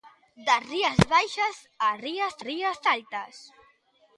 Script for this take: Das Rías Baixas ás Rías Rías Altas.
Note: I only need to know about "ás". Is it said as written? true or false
true